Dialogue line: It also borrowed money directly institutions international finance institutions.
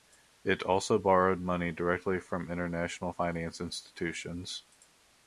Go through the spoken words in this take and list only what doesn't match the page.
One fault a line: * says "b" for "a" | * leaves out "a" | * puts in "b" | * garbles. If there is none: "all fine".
* says "from" for "institutions"